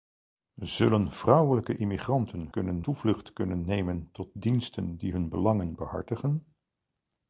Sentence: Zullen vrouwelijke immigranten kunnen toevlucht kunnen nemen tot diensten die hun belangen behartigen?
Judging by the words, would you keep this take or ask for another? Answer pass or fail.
pass